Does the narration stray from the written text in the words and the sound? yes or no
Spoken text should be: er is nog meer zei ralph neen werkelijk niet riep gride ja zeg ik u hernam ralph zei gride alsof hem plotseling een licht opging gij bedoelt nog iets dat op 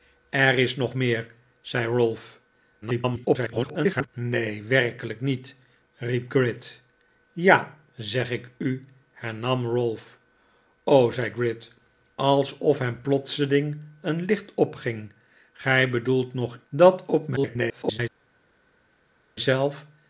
yes